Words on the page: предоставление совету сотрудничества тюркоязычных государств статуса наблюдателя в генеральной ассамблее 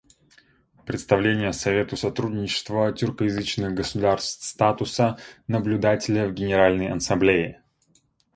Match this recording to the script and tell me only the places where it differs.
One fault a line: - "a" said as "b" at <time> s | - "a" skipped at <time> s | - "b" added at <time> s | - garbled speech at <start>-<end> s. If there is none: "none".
none